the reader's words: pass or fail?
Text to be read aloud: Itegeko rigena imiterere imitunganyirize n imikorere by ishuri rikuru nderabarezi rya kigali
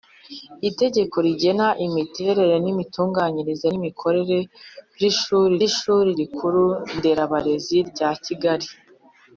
fail